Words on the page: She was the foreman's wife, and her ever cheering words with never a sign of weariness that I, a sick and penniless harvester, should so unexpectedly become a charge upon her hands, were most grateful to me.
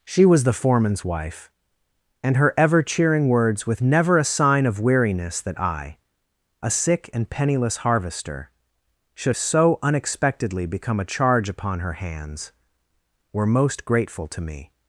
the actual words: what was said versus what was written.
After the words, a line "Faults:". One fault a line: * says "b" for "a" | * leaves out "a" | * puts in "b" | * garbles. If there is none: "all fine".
She was the foreman's wife, and her ever cheering words with never a sign of weariness that I, a sick and penniless harvester, should so unexpectedly become a charge upon her hands, were most grateful to me.
Faults:
all fine